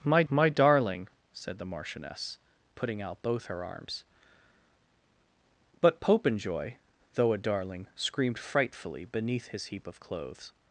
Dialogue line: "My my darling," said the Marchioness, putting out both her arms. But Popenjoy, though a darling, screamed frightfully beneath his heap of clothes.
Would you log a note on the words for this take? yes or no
no